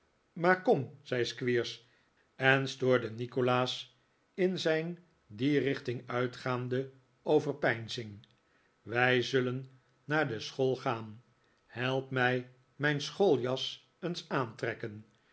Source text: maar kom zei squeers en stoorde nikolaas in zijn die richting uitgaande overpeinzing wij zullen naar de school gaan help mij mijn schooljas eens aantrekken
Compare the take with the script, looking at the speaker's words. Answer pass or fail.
pass